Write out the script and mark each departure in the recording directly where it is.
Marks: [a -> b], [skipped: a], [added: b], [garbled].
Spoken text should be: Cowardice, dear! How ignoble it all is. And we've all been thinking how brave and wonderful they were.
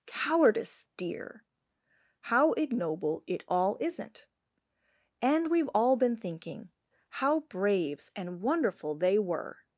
Cowardice, dear! How ignoble it all [is. -> isn't] And we've all been thinking how [brave -> braves] and wonderful they were.